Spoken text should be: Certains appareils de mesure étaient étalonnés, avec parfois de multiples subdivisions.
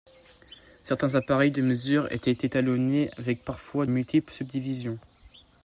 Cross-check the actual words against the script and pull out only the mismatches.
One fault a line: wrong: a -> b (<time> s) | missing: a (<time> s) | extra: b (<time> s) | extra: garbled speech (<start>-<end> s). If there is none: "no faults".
missing: de (3.9 s)